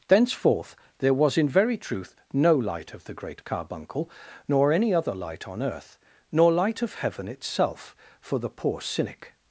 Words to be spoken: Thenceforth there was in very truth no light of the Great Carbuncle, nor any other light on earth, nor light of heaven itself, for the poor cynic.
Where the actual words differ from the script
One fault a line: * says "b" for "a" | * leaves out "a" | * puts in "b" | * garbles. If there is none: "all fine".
all fine